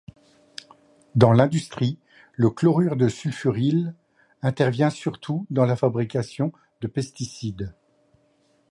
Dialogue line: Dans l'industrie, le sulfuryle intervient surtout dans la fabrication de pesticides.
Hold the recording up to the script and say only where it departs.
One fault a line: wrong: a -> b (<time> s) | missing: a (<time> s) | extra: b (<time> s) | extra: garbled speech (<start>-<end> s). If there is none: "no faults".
extra: chlorure de (2.5 s)